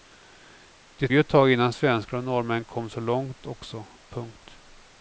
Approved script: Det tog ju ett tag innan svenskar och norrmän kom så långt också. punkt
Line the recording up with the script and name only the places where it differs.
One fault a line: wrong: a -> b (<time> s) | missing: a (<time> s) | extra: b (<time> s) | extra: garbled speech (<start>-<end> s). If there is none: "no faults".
missing: tog (1.1 s)